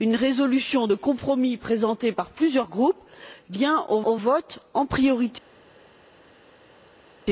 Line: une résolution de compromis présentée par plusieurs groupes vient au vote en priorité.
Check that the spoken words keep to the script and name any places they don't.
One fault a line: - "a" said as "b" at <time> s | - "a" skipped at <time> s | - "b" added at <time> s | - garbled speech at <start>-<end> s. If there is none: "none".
- "au" added at 4.0 s